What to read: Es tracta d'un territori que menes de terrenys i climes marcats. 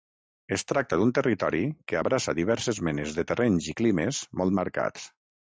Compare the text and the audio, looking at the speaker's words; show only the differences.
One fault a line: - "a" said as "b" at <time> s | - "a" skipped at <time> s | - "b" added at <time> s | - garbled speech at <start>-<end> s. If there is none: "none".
- "abraça diverses" added at 2.0 s
- "molt" added at 4.4 s